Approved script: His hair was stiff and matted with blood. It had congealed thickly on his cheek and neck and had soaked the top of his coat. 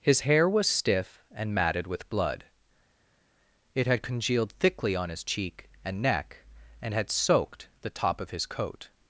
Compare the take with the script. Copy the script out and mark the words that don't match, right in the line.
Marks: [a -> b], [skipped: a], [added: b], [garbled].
His hair was stiff and matted with blood. It had congealed thickly on his cheek and neck and had soaked the top of his coat.